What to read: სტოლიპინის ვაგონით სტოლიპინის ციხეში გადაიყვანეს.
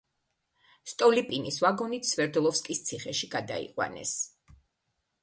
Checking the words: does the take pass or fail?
fail